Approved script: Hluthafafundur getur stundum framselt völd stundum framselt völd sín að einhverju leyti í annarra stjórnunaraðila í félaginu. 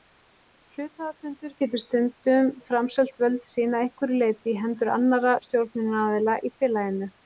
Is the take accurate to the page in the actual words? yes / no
no